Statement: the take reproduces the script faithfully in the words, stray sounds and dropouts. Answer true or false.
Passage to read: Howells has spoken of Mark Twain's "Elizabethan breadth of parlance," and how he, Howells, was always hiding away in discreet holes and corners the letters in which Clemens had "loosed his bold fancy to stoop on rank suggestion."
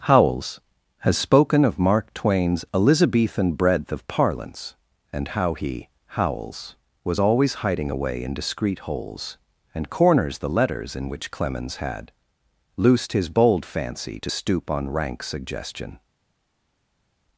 true